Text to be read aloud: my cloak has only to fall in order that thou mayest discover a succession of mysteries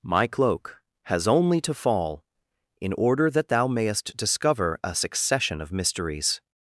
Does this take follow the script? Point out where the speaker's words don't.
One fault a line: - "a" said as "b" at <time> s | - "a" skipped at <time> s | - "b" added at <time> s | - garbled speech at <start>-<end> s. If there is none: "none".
none